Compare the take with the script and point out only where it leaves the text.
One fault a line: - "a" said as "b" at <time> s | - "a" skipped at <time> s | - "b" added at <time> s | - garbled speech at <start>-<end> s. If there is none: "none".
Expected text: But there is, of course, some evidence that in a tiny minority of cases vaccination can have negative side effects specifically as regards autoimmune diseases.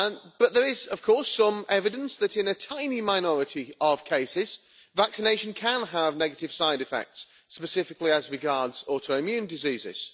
none